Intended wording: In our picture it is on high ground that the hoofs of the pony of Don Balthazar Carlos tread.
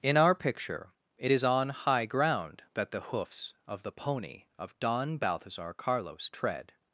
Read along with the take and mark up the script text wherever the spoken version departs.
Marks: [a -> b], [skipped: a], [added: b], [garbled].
In our picture it is on high ground that the hoofs of the pony of Don Balthazar Carlos tread.